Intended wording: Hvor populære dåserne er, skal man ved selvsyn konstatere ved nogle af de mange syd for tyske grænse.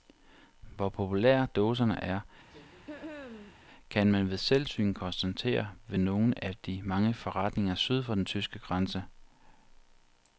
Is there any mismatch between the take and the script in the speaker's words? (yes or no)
yes